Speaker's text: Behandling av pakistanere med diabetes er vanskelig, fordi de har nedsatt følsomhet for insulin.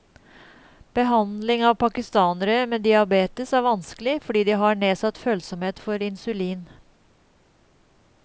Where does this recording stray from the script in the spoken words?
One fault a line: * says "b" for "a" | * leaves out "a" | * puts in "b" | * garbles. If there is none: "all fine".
all fine